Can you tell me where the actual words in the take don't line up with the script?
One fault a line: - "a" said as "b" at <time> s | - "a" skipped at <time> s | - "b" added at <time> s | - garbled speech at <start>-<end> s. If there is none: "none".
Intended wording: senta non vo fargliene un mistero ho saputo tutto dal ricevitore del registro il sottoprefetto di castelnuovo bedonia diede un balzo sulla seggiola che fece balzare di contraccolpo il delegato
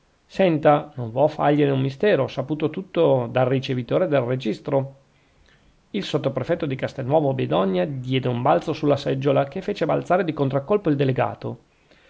none